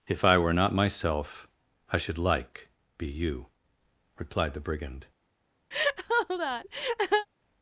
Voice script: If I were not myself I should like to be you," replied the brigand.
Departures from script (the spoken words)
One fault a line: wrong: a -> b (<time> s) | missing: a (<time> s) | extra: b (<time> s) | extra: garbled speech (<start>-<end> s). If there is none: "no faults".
missing: to (2.7 s)